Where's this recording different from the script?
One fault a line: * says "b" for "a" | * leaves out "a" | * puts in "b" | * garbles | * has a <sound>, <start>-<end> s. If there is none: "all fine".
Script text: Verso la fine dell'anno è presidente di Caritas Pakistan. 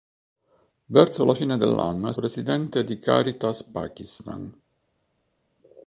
all fine